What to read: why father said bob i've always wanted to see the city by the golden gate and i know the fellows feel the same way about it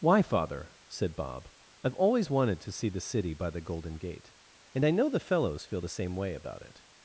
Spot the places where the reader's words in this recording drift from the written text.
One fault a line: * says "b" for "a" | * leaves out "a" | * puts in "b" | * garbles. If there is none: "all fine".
all fine